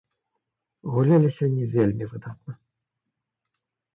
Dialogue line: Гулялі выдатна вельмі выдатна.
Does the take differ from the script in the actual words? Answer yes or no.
yes